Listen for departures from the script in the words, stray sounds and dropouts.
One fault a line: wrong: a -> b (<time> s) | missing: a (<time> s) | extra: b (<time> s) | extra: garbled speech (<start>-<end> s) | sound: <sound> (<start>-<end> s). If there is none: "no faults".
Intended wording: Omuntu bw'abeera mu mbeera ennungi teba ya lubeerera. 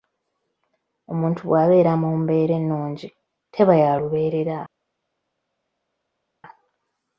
no faults